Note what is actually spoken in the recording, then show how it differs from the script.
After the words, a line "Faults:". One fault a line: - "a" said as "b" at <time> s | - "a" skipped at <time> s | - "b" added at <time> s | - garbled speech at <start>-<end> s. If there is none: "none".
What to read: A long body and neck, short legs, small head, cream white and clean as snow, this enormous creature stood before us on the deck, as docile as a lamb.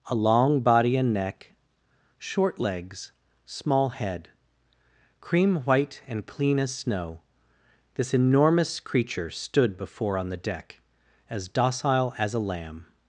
A long body and neck, short legs, small head, cream white and clean as snow, this enormous creature stood before on the deck, as docile as a lamb.
Faults:
- "us" skipped at 10.2 s